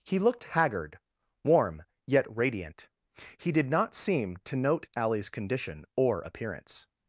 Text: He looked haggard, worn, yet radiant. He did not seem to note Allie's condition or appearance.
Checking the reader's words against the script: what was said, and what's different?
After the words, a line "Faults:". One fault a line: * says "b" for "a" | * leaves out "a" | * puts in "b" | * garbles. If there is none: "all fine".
He looked haggard, warm, yet radiant. He did not seem to note Allie's condition or appearance.
Faults:
* says "warm" for "worn"